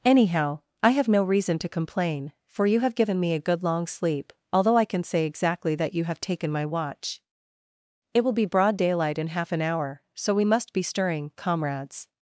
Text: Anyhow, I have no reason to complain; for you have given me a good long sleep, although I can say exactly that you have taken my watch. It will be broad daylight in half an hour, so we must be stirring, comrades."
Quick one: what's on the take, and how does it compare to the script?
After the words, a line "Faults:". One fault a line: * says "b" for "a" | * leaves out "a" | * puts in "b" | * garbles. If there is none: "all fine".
Anyhow, I have no reason to complain; for you have given me a good long sleep, although I can say exactly that you have taken my watch. It will be broad daylight in half an hour, so we must be stirring, comrades."
Faults:
all fine